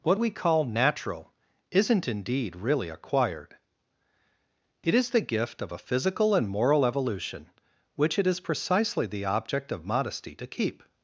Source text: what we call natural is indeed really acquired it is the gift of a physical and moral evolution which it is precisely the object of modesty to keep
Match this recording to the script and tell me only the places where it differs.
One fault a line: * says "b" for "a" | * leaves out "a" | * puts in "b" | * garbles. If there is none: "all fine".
* says "isn't" for "is"